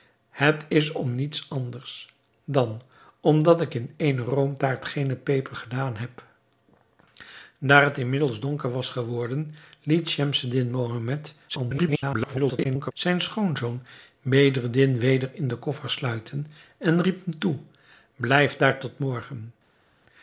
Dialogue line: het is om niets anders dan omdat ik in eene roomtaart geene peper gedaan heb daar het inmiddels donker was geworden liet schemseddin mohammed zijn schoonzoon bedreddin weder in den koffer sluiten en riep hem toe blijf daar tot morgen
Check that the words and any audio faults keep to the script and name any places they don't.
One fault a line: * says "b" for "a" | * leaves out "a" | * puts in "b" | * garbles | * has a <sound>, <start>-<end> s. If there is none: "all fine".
* garbles